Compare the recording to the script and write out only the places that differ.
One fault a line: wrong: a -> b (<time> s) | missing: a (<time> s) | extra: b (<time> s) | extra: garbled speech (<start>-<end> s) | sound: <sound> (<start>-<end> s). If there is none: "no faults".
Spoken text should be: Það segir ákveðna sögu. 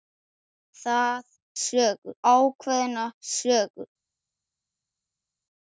wrong: segir -> sögu (1.6 s)